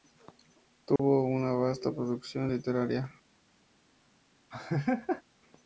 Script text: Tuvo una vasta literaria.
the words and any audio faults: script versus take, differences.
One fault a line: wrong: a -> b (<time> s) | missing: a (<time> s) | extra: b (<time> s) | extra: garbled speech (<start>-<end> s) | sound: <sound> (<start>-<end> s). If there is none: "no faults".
sound: dropout (1.0-1.0 s)
extra: producción (1.9 s)
sound: laugh (4.5-5.2 s)